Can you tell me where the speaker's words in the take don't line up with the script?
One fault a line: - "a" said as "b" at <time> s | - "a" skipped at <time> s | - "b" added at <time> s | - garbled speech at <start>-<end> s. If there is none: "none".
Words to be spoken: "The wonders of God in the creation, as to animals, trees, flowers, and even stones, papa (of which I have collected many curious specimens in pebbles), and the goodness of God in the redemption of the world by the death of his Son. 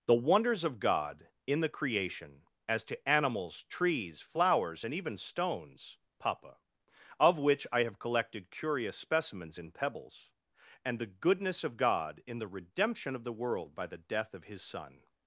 - "many" skipped at 8.5 s